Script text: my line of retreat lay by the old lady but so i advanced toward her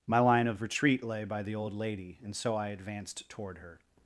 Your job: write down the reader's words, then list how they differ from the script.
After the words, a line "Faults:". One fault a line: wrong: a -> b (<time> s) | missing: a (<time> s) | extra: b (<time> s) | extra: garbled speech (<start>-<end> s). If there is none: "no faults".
my line of retreat lay by the old lady and so i advanced toward her
Faults:
wrong: but -> and (2.2 s)